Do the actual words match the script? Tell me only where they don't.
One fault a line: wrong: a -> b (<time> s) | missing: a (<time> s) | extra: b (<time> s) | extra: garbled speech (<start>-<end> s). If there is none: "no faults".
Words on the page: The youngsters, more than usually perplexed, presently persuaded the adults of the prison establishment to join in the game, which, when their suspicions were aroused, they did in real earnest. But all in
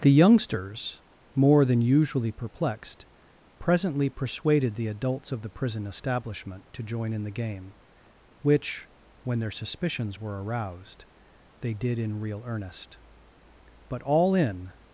no faults